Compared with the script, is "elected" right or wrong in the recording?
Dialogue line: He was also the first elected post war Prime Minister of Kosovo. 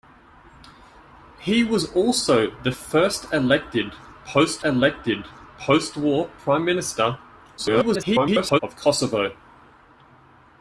right